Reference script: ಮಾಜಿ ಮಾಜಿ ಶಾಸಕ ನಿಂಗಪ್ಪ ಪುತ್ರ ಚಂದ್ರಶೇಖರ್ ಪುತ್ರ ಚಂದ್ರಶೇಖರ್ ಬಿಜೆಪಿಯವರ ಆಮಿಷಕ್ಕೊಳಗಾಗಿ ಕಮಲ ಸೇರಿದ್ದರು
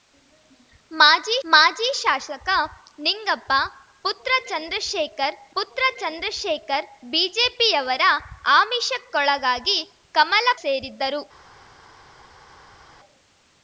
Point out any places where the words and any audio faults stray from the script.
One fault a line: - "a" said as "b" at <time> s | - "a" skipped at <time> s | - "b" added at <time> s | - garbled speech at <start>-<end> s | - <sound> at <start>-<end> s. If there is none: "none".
none